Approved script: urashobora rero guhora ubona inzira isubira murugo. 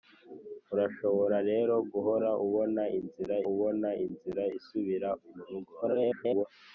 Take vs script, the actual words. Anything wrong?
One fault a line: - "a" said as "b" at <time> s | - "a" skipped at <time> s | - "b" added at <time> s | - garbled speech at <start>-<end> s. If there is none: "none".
- "ubona inzira" added at 3.5 s
- garbled speech at 5.8-6.5 s